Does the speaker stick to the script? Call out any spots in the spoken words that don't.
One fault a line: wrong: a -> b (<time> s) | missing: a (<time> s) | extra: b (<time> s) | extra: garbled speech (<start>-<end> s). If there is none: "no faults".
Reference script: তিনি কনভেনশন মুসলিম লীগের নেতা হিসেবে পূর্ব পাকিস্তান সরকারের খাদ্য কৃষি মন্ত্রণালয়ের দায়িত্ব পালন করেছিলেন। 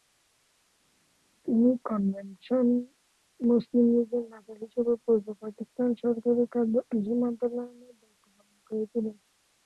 no faults